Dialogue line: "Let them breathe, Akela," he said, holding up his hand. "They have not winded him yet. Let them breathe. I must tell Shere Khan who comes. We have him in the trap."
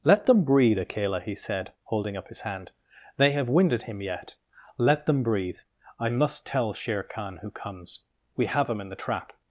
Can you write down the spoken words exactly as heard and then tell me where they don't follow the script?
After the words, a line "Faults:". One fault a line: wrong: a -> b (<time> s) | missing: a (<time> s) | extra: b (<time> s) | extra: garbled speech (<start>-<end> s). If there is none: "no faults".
"Let them breathe, Akela," he said, holding up his hand. "They have winded him yet. Let them breathe. I must tell Shere Khan who comes. We have him in the trap."
Faults:
missing: not (3.5 s)